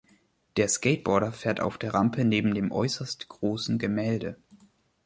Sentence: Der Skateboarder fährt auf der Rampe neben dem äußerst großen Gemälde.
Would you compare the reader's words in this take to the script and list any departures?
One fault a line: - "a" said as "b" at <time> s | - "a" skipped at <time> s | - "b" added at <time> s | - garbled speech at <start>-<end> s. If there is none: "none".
none